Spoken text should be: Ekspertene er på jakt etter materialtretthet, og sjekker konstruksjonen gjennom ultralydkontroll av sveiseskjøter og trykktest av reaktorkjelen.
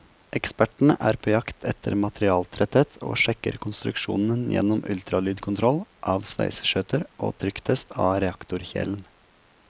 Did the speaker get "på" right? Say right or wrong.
right